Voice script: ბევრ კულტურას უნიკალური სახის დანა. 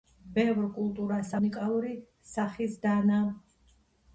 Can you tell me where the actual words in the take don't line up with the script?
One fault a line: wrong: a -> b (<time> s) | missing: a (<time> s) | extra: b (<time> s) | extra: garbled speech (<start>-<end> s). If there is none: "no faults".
no faults